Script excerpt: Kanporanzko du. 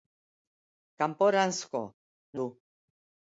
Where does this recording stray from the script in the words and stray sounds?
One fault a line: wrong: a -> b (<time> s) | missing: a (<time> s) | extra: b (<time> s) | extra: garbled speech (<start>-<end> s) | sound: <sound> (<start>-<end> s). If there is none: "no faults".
no faults